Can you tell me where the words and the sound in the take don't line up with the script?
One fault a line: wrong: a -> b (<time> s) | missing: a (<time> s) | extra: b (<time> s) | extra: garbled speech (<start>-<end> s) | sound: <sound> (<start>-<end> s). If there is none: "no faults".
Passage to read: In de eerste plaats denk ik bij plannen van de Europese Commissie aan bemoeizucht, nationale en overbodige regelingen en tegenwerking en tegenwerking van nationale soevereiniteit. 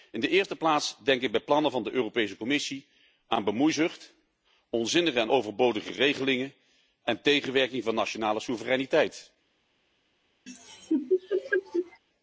wrong: nationale -> onzinnige (4.7 s)
missing: en tegenwerking (7.8 s)
sound: laugh (10.5-12.0 s)